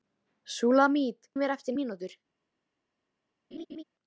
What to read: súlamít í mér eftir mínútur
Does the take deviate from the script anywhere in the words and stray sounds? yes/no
yes